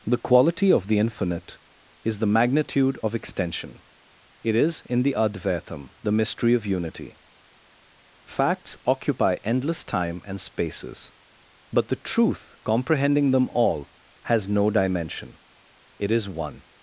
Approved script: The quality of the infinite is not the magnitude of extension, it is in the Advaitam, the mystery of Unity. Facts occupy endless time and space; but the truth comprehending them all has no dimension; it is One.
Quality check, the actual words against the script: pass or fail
fail